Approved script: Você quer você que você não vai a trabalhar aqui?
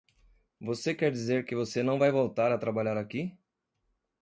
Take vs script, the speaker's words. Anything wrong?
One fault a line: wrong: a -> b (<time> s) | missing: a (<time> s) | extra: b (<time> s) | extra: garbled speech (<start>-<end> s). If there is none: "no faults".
wrong: você -> dizer (1.1 s)
extra: voltar (2.1 s)